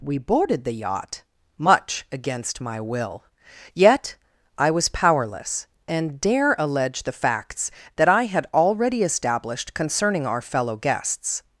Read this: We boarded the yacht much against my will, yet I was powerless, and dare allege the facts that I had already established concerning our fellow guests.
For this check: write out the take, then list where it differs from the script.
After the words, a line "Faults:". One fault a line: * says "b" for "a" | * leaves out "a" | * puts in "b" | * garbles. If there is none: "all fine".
We boarded the yacht much against my will, yet I was powerless, and dare allege the facts that I had already established concerning our fellow guests.
Faults:
all fine